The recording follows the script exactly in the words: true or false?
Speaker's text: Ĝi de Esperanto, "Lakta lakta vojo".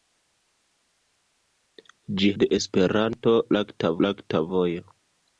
true